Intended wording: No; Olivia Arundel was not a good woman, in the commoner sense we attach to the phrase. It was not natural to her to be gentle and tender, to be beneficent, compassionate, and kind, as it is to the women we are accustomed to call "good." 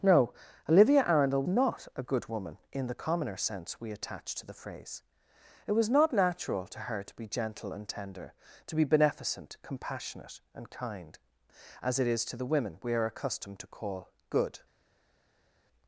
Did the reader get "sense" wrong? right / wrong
right